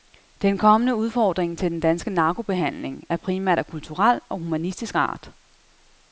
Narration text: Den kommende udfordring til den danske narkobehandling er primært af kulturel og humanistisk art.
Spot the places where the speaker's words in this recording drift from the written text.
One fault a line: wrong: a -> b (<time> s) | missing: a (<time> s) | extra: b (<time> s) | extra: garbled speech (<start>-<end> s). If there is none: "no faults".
no faults